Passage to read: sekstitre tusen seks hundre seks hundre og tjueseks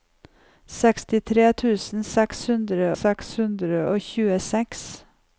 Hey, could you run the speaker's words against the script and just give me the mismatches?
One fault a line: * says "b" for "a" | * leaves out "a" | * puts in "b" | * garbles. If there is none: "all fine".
all fine